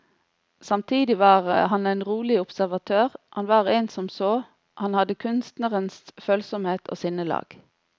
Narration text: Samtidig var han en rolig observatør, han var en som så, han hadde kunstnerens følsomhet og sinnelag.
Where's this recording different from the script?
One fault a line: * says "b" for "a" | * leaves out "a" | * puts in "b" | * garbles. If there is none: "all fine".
all fine